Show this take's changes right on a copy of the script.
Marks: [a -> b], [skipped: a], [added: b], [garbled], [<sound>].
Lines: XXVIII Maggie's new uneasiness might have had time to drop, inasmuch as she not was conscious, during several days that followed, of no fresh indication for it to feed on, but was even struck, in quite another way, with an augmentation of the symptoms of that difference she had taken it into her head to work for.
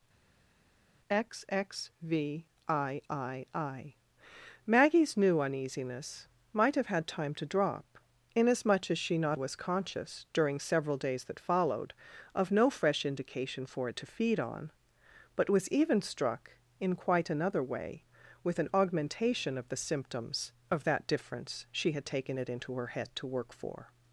XXVIII Maggie's new uneasiness might have had time to drop, inasmuch as she not was conscious, during several days that followed, of no fresh indication for it to feed on, but was even struck, in quite another way, with an augmentation of the symptoms of that difference she had taken it into her head to work for.